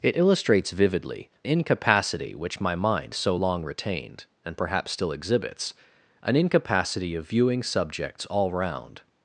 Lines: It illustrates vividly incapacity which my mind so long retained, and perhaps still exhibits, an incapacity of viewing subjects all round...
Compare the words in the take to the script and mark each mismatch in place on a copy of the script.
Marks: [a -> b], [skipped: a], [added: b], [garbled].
It illustrates vividly incapacity which my mind so long retained, and perhaps still exhibits, an incapacity of viewing subjects all round...